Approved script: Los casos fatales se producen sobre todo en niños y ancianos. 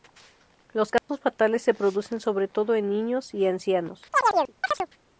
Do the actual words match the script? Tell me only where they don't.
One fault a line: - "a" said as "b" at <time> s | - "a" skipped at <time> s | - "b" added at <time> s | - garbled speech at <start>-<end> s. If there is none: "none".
none